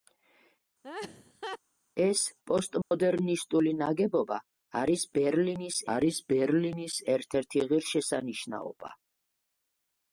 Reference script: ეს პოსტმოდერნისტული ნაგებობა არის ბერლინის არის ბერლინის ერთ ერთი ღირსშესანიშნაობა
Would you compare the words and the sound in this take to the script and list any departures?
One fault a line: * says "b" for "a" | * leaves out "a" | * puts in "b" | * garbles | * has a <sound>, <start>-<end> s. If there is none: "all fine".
* has a laugh, 0.8-1.6 s
* has a dropout, 2.8-2.9 s